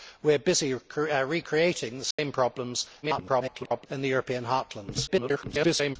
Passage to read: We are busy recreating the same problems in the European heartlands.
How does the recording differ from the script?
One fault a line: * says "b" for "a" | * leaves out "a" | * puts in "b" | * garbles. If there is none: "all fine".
* garbles
* garbles